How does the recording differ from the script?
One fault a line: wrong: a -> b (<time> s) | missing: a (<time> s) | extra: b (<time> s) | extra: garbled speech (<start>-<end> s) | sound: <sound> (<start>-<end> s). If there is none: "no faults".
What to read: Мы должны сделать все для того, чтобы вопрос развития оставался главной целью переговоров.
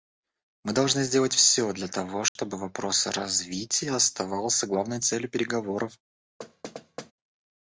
sound: dropout (2.3-2.4 s)
sound: thud (6.4-7.1 s)